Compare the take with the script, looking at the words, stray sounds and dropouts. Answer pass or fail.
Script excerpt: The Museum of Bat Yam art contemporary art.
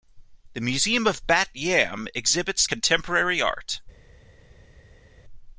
fail